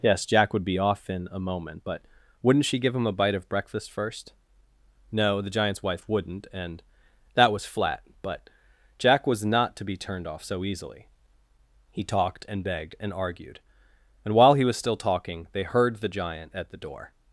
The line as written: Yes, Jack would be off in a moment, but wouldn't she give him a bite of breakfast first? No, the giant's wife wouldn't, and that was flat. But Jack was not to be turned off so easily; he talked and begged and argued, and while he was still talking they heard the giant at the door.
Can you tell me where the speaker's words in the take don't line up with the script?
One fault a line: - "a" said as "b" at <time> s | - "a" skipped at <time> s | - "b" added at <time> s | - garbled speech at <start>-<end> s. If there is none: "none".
none